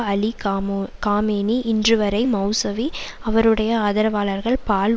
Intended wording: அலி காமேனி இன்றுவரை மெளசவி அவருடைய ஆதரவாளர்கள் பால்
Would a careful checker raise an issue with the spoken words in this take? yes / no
yes